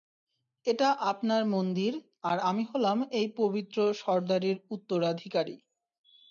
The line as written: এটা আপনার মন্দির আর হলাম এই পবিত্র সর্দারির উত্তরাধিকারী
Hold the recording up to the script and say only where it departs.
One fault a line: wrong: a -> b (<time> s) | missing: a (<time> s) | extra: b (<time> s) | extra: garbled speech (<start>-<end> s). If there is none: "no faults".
extra: আমি (2.5 s)